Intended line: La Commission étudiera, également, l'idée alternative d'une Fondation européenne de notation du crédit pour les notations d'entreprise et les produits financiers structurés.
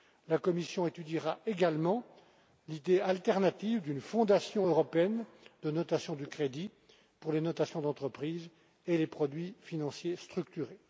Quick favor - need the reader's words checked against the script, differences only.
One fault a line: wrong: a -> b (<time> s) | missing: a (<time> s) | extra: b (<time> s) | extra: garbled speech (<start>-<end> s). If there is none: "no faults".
no faults